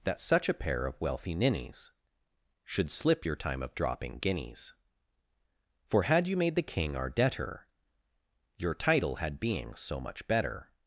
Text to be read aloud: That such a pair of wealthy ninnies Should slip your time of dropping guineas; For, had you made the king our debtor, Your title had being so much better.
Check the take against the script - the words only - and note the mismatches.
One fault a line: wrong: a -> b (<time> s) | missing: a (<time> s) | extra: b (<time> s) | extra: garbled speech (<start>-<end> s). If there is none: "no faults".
no faults